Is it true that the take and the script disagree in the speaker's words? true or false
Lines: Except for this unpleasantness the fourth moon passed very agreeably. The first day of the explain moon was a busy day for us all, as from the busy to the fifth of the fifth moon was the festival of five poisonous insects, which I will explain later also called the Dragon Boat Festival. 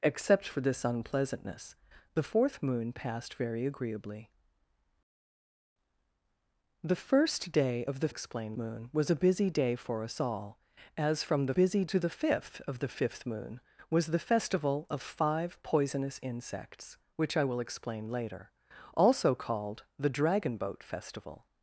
false